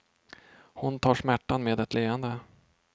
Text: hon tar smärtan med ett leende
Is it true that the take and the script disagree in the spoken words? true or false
false